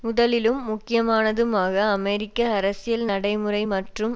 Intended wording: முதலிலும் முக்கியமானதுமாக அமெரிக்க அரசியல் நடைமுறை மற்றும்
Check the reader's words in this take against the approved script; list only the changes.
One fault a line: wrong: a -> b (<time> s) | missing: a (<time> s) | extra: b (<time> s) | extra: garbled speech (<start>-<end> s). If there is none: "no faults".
no faults